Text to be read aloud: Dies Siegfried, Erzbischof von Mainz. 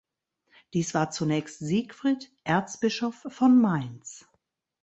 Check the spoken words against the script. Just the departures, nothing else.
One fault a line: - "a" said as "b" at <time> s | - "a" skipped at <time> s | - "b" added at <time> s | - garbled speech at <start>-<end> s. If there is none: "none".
- "war zunächst" added at 0.9 s